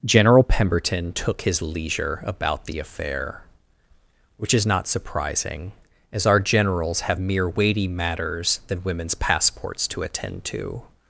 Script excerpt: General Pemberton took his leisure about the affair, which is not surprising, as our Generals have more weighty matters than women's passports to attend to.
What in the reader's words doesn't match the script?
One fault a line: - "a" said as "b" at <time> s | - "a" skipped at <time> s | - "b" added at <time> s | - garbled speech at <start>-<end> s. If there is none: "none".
- "more" said as "mere" at 7.2 s